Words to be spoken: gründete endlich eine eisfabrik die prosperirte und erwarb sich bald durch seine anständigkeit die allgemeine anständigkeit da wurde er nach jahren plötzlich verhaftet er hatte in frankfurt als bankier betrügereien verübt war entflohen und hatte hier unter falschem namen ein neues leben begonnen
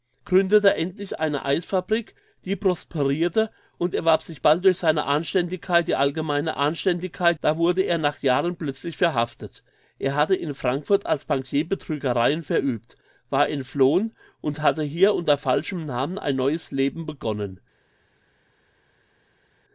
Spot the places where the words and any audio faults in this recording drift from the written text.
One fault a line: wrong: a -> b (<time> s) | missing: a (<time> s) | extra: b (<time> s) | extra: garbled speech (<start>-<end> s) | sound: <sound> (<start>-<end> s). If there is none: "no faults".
no faults